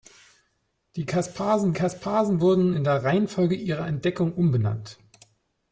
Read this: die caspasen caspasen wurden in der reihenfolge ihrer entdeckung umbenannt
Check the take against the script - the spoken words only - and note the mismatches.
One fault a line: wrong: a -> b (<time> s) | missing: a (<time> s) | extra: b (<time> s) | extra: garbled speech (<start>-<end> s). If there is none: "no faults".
no faults